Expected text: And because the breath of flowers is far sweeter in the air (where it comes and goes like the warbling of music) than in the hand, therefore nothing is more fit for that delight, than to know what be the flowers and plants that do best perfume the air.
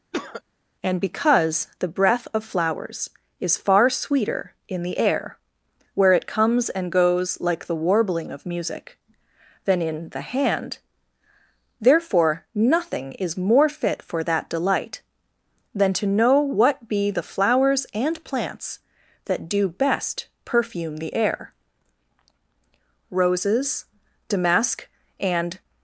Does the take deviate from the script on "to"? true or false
false